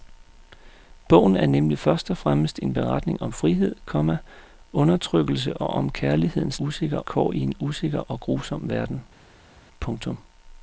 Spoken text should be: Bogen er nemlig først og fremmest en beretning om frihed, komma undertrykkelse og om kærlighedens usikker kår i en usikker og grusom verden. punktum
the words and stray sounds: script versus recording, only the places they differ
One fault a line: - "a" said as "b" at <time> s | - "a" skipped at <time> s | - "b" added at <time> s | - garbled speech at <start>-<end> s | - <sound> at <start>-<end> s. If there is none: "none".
none